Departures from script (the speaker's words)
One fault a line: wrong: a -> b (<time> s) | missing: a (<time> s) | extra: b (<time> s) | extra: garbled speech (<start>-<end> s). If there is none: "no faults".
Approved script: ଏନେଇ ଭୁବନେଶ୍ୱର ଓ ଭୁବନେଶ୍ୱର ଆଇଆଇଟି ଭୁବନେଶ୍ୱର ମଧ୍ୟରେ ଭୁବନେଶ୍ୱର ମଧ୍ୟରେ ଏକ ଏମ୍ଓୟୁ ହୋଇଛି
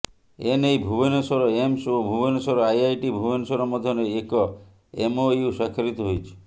extra: ଏମ୍ସ (1.6 s)
missing: ଭୁବନେଶ୍ୱର ମଧ୍ୟରେ (4.1 s)
extra: ସ୍ୱାକ୍ଷରିତ (5.5 s)